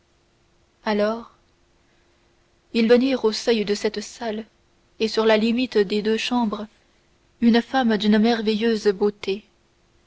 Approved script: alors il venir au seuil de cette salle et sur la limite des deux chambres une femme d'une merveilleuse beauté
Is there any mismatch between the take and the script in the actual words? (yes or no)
no